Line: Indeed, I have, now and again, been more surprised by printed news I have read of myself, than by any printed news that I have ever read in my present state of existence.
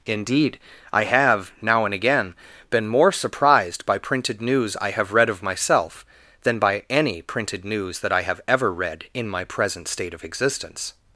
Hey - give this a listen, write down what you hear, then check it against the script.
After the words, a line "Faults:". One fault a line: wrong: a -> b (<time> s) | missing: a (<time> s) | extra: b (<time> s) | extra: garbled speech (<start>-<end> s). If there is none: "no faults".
Indeed, I have, now and again, been more surprised by printed news I have read of myself, than by any printed news that I have ever read in my present state of existence.
Faults:
no faults